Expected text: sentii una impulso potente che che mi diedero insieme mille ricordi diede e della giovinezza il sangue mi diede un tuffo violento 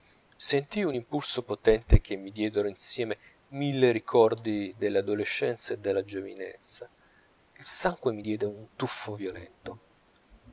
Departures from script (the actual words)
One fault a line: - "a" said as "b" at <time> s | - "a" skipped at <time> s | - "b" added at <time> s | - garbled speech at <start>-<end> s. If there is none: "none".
- "una" said as "un" at 0.8 s
- "che" skipped at 2.1 s
- "diede" said as "dell'adolescenza" at 4.8 s